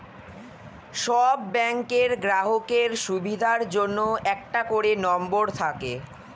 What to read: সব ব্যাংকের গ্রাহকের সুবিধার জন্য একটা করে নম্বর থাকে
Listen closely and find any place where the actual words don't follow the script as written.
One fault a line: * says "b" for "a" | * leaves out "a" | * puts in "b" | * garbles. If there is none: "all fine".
all fine